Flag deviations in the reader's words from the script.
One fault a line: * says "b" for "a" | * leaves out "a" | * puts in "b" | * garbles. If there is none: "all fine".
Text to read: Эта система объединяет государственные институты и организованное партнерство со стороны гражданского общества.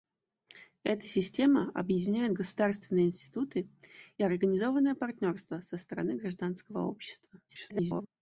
* garbles